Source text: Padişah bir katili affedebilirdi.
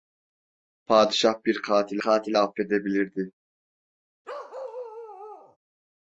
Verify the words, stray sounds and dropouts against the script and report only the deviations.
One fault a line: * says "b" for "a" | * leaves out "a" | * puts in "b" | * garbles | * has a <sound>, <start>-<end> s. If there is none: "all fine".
* puts in "katili"
* has a bark, 4.2-5.6 s